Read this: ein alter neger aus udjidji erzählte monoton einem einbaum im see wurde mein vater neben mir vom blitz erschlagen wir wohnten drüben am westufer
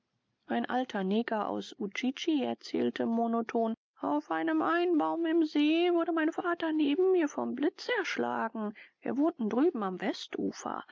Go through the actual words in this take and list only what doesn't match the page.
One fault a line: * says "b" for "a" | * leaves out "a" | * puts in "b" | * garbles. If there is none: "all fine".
* puts in "auf"